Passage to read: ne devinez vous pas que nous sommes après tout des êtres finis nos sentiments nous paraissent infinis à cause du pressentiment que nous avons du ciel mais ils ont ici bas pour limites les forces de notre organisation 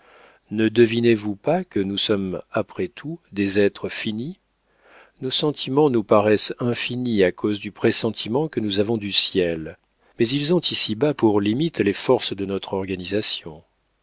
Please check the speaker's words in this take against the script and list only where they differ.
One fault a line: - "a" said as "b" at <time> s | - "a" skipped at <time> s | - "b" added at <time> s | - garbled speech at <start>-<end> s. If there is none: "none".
none